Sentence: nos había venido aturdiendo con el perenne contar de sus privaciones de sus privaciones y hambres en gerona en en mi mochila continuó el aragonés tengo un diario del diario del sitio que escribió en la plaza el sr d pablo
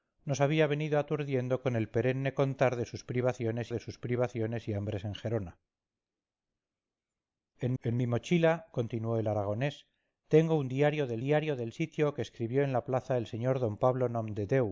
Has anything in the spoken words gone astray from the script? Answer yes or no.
no